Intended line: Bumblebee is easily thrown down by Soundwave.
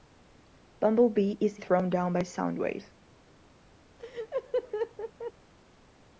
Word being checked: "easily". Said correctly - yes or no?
no